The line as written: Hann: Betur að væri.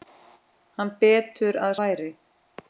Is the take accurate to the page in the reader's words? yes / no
yes